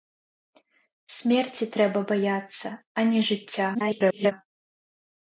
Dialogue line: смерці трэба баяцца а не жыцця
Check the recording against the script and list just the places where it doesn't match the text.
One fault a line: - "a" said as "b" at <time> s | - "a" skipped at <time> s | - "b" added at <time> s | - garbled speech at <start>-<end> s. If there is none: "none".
- garbled speech at 3.7-4.3 s